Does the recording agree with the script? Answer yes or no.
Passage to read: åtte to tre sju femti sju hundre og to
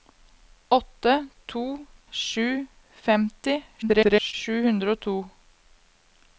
no